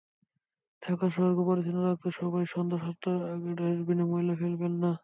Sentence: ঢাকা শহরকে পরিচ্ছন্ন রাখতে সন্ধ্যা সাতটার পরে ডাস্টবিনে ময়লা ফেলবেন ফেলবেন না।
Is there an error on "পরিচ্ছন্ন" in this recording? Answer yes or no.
no